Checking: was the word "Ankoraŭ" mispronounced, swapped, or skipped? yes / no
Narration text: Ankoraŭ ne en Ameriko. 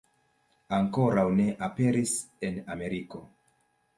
no